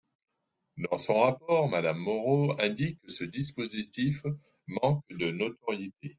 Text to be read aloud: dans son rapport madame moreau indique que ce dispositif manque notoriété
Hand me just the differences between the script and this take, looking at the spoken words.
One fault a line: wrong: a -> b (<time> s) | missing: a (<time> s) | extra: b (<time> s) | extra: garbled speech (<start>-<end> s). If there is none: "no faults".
extra: de (5.1 s)